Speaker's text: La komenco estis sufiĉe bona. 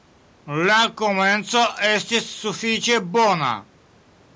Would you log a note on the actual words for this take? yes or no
no